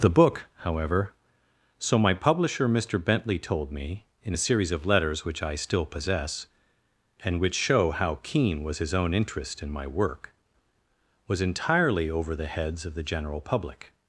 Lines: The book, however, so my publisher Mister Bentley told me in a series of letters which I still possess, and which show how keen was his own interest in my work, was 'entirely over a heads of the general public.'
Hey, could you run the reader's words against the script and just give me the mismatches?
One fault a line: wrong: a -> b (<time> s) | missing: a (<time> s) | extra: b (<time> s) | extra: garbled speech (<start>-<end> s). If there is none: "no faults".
wrong: a -> the (12.3 s)